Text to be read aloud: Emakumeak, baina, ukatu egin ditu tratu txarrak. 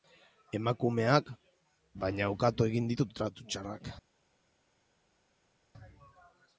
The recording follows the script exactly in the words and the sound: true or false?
true